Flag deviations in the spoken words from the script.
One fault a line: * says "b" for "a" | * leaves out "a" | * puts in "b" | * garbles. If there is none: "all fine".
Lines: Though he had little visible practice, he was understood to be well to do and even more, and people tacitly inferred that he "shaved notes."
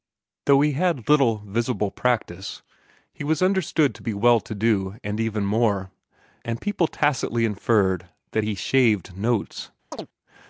all fine